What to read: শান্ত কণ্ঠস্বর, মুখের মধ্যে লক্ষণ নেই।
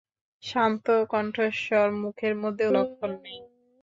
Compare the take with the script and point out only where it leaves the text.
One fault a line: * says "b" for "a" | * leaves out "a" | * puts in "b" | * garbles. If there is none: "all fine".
all fine